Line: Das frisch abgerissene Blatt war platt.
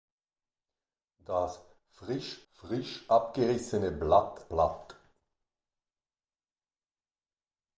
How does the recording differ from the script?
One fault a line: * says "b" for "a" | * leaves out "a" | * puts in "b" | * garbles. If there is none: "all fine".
* puts in "frisch"
* leaves out "war"